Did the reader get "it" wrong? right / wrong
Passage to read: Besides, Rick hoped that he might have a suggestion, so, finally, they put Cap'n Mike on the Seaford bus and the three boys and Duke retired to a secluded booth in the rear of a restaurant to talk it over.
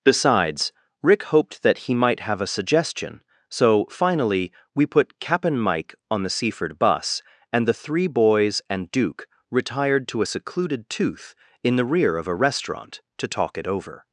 right